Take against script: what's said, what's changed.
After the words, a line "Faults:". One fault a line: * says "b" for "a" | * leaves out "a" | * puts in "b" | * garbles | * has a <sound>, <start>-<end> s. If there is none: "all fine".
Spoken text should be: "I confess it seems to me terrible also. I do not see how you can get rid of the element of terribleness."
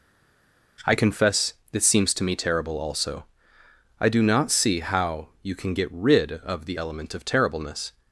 "I confess this seems to me terrible also. I do not see how you can get rid of the element of terribleness."
Faults:
* says "this" for "it"